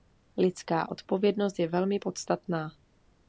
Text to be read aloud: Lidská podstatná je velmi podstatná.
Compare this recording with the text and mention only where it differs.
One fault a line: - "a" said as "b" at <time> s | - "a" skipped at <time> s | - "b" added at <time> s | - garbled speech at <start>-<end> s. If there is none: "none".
- "podstatná" said as "odpovědnost" at 0.9 s